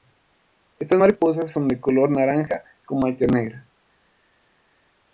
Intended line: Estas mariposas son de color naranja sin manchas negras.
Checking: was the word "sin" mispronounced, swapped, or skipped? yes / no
yes